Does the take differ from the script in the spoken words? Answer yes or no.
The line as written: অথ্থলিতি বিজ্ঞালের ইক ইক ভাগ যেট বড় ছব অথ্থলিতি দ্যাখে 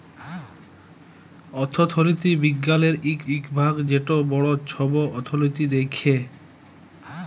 no